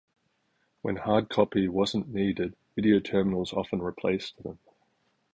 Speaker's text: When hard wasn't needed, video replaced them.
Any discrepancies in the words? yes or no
yes